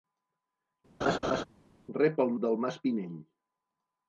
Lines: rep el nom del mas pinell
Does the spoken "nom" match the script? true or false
false